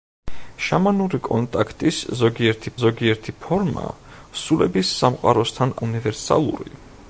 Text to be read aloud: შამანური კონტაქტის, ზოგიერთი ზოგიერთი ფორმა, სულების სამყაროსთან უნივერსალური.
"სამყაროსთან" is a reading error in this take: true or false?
false